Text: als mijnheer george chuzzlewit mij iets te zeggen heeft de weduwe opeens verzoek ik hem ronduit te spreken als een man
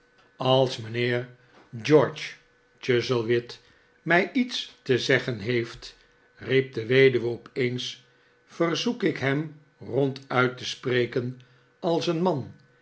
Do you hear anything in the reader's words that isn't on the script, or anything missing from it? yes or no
yes